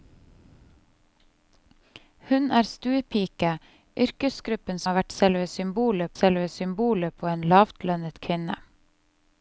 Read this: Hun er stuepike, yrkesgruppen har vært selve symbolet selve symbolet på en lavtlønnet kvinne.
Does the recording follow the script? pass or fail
pass